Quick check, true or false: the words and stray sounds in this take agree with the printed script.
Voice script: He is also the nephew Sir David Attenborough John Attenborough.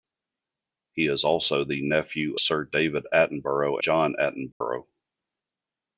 false